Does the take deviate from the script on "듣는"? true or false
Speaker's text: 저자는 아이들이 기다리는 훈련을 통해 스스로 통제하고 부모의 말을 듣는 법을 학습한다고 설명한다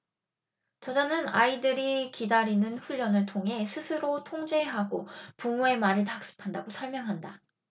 true